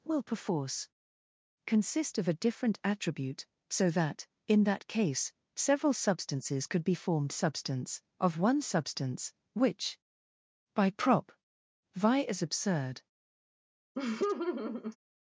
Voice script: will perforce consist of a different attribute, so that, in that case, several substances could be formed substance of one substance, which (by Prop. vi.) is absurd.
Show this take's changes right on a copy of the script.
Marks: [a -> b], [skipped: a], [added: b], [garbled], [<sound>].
will perforce consist of a different attribute, so that, in that case, several substances could be formed substance of one substance, which (by Prop. vi.) is absurd. [laugh]